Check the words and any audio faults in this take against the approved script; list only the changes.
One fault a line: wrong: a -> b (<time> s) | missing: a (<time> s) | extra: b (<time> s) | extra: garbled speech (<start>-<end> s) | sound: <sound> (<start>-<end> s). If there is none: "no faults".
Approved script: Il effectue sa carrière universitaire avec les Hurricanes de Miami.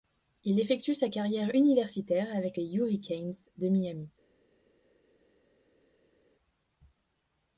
no faults